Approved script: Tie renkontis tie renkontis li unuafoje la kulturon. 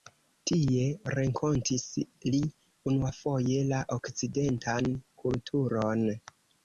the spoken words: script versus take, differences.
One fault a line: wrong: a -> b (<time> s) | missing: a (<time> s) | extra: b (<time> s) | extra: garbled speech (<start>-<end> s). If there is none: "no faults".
missing: tie renkontis (1.8 s)
extra: okcidentan (4.0 s)